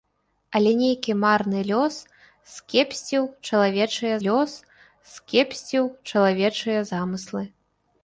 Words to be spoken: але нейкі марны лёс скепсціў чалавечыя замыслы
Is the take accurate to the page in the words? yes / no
no